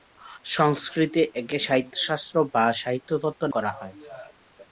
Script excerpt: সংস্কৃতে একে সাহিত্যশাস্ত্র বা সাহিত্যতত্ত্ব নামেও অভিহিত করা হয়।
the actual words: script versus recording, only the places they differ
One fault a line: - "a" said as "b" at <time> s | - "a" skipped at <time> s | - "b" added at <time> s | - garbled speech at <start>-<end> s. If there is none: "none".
- "নামেও অভিহিত" skipped at 3.4 s